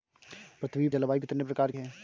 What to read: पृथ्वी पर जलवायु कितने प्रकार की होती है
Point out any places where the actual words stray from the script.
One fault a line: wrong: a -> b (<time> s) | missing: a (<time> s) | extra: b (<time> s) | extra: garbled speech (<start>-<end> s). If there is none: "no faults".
missing: पर (0.9 s)
missing: की होती (1.7 s)